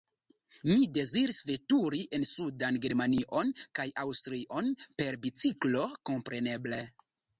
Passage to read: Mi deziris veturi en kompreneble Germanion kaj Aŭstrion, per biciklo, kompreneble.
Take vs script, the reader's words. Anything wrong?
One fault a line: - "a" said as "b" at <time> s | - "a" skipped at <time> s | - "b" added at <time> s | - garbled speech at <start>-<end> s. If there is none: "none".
- "kompreneble" said as "sudan" at 2.3 s